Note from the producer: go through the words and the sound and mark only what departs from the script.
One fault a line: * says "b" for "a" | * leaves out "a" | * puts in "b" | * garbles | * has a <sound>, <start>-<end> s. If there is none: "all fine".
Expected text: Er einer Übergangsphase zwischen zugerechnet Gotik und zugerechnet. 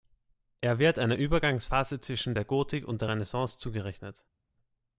* puts in "wird"
* says "der" for "zugerechnet"
* puts in "der Renaissance"